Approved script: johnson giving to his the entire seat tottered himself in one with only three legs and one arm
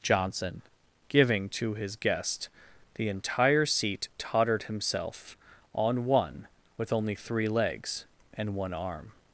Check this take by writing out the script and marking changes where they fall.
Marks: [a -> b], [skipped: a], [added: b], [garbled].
johnson giving to his [added: guest] the entire seat tottered himself [in -> on] one with only three legs and one arm